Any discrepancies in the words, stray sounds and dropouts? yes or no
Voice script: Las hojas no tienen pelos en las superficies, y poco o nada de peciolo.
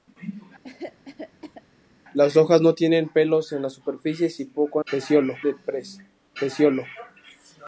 yes